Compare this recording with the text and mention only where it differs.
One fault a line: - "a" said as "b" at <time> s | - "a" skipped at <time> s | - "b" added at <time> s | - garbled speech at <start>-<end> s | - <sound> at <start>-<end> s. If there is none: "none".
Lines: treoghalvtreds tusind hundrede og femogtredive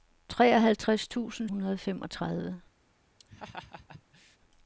- laugh at 3.2-4.4 s